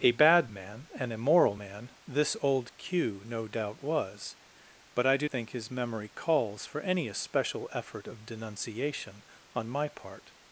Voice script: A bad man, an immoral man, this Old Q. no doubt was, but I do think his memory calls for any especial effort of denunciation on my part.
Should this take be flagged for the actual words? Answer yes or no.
no